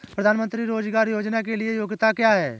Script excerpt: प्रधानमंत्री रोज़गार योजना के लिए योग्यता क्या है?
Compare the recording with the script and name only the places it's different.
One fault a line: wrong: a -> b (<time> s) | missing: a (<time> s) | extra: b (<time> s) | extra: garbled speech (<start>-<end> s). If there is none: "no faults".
no faults